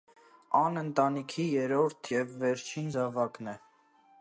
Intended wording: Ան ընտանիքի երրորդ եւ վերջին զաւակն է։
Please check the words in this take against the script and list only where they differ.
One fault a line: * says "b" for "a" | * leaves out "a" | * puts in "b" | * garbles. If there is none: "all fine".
all fine